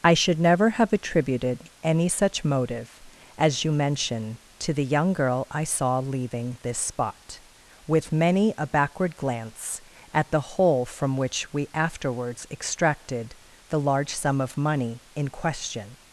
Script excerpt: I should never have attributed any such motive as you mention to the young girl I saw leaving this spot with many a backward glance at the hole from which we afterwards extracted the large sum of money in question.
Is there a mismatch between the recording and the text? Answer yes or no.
no